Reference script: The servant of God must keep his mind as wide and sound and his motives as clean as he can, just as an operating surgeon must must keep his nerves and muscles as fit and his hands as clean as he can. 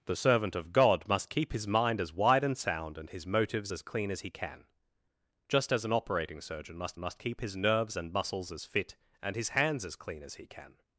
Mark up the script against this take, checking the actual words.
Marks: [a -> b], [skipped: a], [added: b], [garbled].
The servant of God must keep his mind as wide and sound and his motives as clean as he can, just as an operating surgeon must must keep his nerves and muscles as fit and his hands as clean as he can.